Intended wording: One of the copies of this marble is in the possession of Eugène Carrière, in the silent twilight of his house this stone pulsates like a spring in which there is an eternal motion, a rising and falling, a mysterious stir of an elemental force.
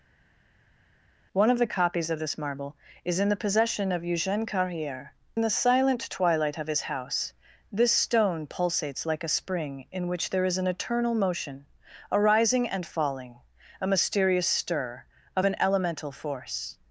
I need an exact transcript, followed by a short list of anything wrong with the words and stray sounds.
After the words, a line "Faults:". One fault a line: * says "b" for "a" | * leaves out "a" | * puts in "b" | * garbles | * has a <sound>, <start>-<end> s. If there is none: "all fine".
One of the copies of this marble is in the possession of Eugène Carrière, in the silent twilight of his house this stone pulsates like a spring in which there is an eternal motion, a rising and falling, a mysterious stir of an elemental force.
Faults:
all fine